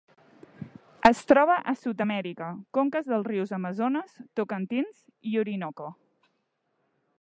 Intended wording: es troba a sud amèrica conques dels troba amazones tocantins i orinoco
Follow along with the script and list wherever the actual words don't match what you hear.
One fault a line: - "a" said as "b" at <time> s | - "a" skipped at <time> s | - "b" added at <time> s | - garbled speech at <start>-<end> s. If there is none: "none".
- "troba" said as "rius" at 3.3 s